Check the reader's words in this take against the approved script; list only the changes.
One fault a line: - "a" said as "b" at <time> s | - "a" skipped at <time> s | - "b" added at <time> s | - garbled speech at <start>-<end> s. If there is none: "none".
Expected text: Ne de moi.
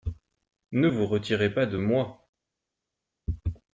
- "vous retirez pas" added at 0.8 s